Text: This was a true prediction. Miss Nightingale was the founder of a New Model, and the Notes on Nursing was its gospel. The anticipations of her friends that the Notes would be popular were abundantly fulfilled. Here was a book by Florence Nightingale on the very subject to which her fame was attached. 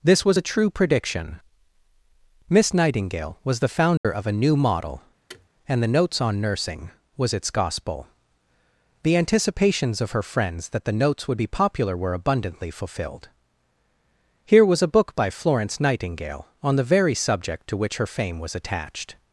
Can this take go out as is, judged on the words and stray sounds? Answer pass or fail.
fail